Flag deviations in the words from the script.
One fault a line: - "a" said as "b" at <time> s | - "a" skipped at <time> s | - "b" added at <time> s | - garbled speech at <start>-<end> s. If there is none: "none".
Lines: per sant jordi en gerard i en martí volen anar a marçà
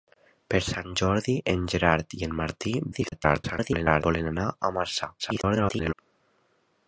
- garbled speech at 2.9-4.0 s
- garbled speech at 5.2-5.9 s